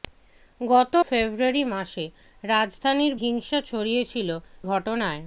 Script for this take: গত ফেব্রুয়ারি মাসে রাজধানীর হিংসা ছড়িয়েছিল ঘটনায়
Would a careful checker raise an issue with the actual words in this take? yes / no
no